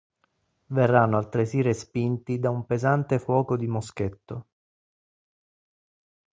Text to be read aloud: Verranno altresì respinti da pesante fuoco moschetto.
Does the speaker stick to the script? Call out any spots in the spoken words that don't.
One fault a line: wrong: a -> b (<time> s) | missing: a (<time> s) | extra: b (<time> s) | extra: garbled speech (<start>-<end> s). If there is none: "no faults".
extra: un (2.5 s)
extra: di (3.5 s)